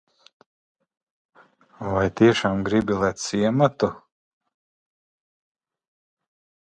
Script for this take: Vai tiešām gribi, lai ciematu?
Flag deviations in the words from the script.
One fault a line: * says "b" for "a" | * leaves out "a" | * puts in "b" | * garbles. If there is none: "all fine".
all fine